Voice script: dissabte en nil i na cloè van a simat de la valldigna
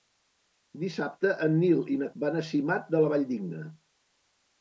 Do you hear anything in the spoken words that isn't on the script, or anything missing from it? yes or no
yes